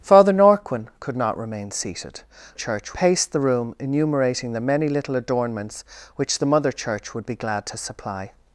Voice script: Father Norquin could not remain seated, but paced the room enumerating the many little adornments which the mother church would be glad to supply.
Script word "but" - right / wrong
wrong